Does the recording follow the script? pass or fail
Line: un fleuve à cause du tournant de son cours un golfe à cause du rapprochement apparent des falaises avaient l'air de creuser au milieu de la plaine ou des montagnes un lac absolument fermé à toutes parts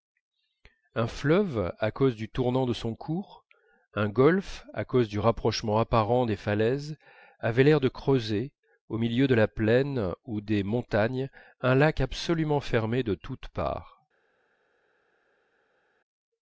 fail